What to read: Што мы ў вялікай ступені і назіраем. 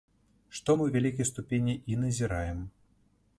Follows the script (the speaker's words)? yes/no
yes